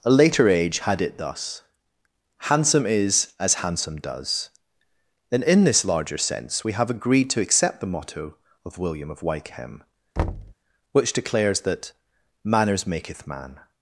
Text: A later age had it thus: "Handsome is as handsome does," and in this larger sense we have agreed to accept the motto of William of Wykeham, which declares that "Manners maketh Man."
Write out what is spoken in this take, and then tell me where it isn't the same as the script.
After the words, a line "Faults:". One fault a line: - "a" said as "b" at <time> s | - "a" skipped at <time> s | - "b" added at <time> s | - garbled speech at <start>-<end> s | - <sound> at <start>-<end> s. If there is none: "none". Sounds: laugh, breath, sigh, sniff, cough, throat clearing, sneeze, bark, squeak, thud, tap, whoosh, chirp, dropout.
A later age had it thus: "Handsome is as handsome does," and in this larger sense we have agreed to accept the motto of William of Wykeham, which declares that "Manners maketh Man."
Faults:
- thud at 10.2-10.5 s